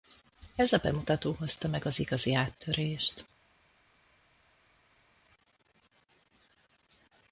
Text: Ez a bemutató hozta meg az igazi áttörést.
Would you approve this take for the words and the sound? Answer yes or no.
yes